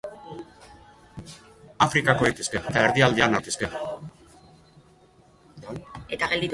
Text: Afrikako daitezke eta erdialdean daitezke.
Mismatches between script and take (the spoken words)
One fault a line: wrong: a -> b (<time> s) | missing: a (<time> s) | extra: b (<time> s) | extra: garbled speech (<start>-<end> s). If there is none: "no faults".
no faults